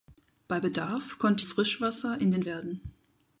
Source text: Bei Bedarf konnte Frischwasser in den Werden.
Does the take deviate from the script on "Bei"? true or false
false